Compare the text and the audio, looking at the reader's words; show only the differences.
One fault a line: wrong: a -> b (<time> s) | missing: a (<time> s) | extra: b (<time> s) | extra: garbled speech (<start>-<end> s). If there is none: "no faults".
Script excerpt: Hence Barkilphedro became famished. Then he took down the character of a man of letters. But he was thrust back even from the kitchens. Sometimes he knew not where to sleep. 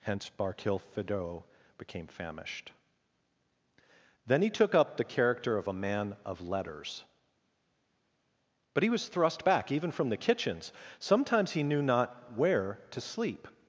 wrong: down -> up (4.7 s)